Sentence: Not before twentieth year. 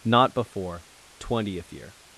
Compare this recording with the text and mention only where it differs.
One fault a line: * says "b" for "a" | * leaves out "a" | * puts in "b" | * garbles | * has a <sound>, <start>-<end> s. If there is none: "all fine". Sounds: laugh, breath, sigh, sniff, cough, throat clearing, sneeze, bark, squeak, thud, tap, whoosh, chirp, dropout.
all fine